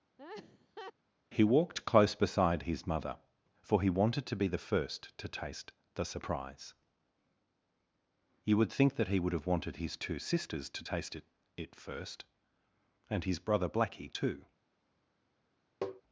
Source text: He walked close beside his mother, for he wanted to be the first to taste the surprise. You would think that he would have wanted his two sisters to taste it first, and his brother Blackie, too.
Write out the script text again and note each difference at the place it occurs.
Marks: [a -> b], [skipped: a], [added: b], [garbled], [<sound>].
[laugh] He walked close beside his mother, for he wanted to be the first to taste the surprise. You would think that he would have wanted his two sisters to taste it [added: it] first, and his brother Blackie, too. [tap]